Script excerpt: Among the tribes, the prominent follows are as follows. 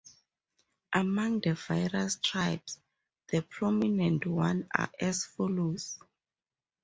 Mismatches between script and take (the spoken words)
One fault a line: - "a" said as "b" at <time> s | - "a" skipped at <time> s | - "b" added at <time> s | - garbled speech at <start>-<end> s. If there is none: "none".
- "various" added at 1.5 s
- "follows" said as "ones" at 4.3 s